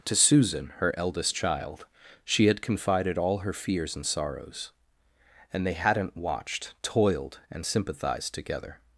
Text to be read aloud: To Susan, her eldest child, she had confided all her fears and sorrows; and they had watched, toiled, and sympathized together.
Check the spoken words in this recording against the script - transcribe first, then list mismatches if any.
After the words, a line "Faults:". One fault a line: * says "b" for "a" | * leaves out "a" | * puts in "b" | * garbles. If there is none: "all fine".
To Susan, her eldest child, she had confided all her fears and sorrows; and they hadn't watched, toiled, and sympathized together.
Faults:
* says "hadn't" for "had"